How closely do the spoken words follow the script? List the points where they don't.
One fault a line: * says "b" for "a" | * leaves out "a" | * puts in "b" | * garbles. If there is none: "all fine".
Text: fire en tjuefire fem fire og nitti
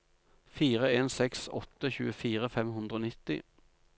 * puts in "seks åtte"
* says "hundre" for "fire"